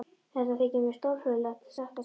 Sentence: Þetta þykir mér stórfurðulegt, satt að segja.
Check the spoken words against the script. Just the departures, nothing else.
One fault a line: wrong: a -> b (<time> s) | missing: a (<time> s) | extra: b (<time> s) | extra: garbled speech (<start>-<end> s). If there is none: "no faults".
no faults